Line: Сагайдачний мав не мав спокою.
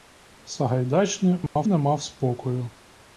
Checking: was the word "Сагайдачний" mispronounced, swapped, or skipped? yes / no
no